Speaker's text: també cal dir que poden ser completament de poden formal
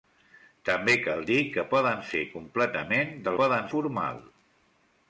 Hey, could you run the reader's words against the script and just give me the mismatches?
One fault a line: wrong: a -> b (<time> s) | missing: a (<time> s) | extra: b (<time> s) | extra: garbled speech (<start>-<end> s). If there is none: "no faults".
no faults